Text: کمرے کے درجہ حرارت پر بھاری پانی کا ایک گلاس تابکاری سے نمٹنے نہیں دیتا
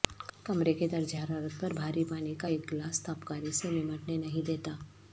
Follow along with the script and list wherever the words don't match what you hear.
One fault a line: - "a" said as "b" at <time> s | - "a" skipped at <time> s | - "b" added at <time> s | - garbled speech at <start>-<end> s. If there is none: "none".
none